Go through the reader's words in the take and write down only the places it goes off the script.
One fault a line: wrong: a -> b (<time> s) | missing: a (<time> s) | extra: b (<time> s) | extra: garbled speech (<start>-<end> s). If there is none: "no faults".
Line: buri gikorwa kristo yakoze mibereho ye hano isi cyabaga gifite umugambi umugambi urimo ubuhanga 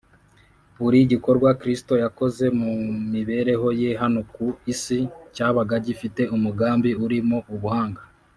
extra: mu (2.6 s)
extra: ku (4.3 s)
missing: umugambi (6.9 s)